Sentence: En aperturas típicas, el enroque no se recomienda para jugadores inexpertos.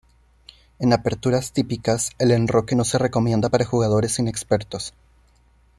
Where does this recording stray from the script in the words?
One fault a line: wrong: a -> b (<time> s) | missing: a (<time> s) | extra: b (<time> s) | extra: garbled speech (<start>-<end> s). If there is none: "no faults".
no faults